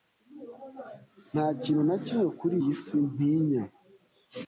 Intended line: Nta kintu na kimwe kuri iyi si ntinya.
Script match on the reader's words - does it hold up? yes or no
yes